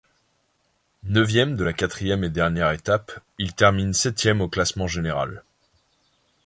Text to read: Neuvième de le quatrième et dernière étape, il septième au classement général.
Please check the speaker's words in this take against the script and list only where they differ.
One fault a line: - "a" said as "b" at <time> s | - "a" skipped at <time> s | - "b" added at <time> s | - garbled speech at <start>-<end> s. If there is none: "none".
- "le" said as "la" at 1.6 s
- "termine" added at 3.5 s